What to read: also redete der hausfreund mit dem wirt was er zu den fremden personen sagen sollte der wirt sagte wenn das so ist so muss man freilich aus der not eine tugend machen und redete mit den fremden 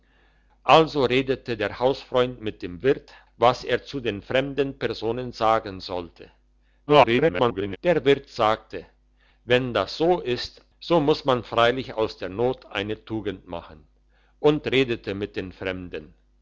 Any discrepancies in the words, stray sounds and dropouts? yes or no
yes